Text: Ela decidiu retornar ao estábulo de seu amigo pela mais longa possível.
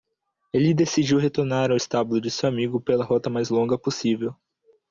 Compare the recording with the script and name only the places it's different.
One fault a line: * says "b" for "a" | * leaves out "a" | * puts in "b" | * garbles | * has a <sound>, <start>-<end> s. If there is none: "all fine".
* says "Ele" for "Ela"
* puts in "rota"